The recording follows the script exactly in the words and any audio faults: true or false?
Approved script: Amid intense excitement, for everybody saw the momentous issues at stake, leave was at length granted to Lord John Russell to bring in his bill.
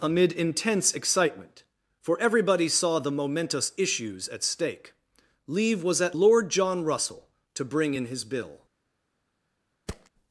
false